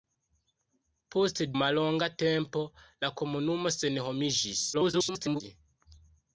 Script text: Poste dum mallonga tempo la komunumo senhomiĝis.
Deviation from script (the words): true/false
true